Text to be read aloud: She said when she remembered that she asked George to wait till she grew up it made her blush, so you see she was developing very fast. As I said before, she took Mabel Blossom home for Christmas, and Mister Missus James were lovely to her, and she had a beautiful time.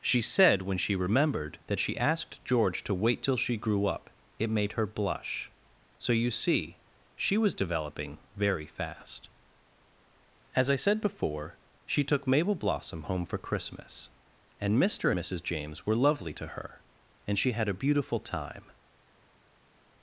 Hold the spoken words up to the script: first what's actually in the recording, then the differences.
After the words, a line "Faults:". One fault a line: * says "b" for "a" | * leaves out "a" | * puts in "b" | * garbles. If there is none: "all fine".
She said when she remembered that she asked George to wait till she grew up it made her blush, so you see she was developing very fast. As I said before, she took Mabel Blossom home for Christmas, and Mister Missus James were lovely to her, and she had a beautiful time.
Faults:
all fine